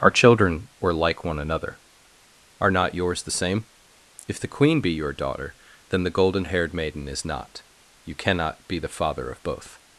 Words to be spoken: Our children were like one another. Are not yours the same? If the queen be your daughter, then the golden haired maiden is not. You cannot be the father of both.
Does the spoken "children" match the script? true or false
true